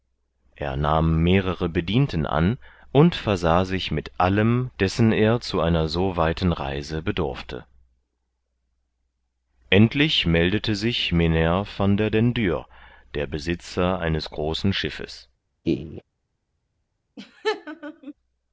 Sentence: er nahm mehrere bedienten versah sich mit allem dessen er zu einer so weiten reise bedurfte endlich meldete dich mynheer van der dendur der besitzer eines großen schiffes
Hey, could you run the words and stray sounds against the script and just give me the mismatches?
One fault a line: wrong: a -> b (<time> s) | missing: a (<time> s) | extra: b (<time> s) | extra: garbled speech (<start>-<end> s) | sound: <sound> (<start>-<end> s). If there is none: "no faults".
extra: an und (2.2 s)
wrong: dich -> sich (10.7 s)
sound: laugh (15.6-16.0 s)
sound: laugh (17.2-18.1 s)